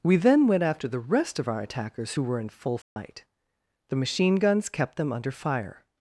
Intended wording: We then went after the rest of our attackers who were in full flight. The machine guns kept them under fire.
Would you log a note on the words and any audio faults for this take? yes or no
yes